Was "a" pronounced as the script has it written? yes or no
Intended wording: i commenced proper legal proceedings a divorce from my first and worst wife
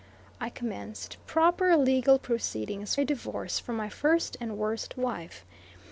yes